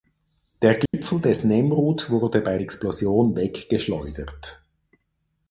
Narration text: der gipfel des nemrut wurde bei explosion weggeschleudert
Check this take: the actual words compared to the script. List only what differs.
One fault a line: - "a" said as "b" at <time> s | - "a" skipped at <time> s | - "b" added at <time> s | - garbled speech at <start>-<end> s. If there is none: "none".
none